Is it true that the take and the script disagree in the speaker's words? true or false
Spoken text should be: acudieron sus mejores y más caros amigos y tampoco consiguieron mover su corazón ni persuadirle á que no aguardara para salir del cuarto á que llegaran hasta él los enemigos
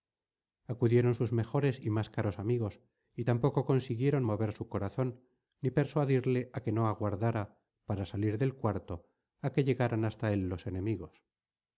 false